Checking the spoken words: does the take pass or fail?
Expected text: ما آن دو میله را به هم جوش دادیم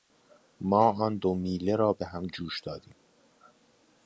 pass